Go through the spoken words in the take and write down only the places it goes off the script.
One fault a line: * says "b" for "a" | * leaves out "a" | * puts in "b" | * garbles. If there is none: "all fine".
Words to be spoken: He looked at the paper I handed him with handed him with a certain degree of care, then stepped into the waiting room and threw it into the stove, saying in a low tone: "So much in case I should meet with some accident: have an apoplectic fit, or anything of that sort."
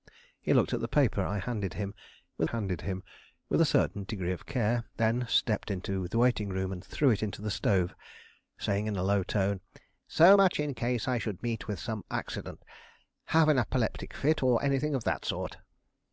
all fine